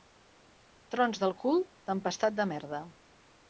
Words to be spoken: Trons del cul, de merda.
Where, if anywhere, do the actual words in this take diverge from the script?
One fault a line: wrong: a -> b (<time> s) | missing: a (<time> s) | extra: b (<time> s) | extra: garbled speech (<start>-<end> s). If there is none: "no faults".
extra: tempestat (1.9 s)